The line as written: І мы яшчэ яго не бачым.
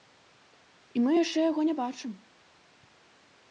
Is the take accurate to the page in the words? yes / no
yes